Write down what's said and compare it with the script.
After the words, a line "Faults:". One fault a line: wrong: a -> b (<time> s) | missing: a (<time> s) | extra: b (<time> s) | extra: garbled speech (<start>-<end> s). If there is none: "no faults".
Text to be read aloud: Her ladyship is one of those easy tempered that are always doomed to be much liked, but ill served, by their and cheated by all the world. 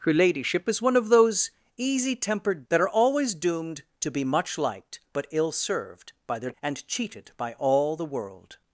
Her ladyship is one of those easy tempered that are always doomed to be much liked, but ill served, by their and cheated by all the world.
Faults:
no faults